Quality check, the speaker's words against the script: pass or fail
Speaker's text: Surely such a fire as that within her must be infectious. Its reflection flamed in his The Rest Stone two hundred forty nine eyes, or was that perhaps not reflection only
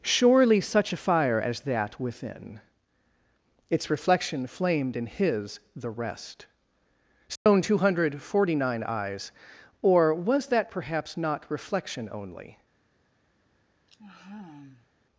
fail